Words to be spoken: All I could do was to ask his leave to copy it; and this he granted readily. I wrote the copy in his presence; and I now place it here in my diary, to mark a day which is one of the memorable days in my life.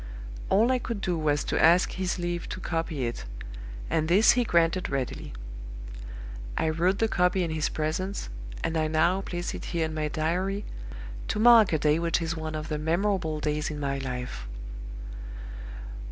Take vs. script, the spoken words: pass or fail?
pass